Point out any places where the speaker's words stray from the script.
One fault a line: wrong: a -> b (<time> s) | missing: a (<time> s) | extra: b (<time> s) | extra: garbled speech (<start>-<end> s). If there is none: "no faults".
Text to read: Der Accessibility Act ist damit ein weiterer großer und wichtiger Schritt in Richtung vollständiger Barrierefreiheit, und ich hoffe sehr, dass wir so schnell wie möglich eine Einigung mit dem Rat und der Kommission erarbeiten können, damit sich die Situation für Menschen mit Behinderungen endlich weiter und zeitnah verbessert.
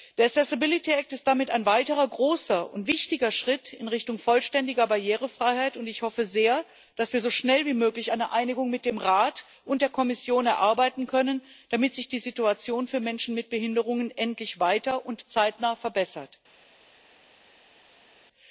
no faults